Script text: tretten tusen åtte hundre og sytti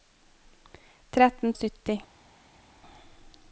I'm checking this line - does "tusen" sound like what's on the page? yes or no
no